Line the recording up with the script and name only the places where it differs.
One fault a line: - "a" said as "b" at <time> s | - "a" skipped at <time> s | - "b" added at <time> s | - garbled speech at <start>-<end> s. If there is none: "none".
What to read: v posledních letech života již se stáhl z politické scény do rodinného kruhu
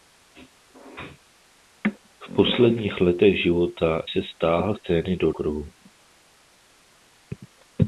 - "již" skipped at 4.0 s
- "z politické" skipped at 4.7 s
- "rodinného" skipped at 5.3 s